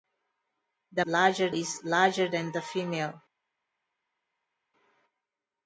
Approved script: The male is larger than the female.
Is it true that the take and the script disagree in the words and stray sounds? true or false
true